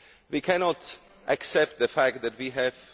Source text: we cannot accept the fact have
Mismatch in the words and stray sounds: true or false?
true